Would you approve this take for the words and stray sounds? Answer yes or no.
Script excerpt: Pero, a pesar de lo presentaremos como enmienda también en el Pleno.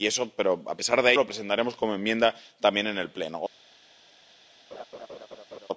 no